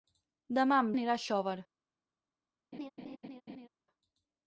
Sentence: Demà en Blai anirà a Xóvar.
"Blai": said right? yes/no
no